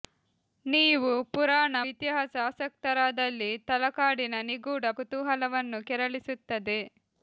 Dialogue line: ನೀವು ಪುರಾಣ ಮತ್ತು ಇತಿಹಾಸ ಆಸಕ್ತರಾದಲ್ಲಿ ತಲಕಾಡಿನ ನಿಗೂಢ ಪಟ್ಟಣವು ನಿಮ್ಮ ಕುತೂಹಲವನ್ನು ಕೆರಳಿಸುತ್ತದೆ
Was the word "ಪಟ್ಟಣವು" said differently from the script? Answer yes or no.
yes